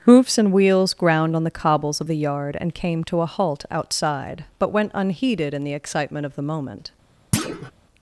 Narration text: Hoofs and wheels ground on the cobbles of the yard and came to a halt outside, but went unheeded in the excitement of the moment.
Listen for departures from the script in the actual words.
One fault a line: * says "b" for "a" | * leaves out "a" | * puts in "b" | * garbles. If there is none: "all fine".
all fine